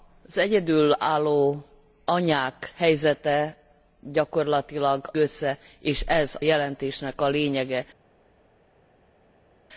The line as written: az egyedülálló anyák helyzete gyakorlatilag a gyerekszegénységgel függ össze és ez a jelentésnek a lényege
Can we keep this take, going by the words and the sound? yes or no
no